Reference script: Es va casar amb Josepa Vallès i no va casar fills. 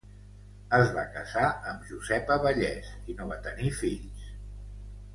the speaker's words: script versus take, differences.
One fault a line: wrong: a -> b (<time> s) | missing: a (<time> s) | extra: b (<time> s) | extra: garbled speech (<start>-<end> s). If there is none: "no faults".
wrong: casar -> tenir (3.5 s)